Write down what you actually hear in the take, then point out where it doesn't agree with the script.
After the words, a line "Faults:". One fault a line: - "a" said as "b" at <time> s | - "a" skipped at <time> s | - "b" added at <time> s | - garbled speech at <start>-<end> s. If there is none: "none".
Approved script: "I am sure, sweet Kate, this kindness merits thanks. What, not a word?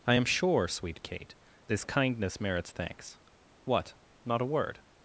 "I am sure, sweet Kate, this kindness merits thanks. What, not a word?
Faults:
none